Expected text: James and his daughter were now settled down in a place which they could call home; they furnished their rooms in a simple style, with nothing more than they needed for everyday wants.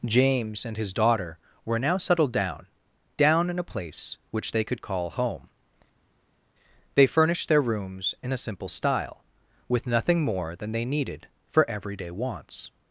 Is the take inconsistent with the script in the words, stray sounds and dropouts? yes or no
yes